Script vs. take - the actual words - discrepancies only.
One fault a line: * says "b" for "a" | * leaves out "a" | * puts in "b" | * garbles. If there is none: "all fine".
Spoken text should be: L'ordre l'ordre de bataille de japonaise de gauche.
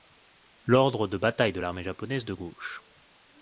* leaves out "l'ordre"
* puts in "l'armée"